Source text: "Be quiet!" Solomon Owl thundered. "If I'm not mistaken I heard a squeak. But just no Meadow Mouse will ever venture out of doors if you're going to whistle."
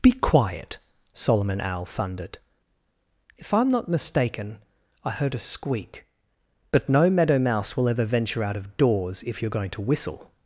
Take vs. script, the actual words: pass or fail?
fail